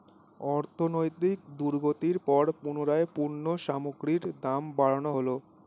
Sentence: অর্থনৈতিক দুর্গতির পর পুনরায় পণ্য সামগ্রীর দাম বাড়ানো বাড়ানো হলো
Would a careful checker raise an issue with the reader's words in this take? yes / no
yes